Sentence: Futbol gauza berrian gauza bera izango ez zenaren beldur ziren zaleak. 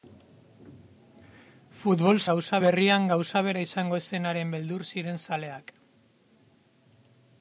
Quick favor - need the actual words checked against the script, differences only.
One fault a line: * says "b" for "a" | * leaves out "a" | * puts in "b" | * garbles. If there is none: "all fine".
all fine